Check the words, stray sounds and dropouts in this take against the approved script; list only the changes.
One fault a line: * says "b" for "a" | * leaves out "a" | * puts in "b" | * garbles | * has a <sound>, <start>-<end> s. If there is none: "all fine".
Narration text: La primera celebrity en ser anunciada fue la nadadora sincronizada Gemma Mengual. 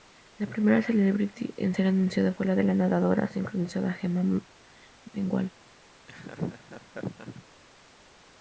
* has a laugh, 6.1-7.4 s